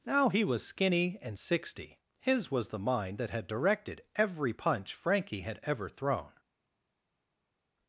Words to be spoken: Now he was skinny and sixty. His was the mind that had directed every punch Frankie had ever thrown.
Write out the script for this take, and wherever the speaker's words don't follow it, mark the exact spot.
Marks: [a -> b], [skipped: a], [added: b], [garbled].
Now he was skinny and sixty. His was the mind that had directed every punch Frankie had ever thrown.